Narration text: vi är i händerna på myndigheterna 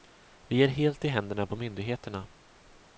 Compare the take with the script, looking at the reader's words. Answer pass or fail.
fail